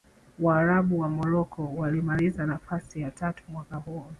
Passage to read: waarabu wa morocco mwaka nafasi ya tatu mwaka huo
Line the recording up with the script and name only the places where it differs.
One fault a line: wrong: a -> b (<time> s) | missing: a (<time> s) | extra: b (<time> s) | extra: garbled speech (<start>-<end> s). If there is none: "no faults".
wrong: mwaka -> walimaliza (1.8 s)